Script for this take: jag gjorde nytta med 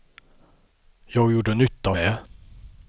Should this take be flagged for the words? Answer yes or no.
no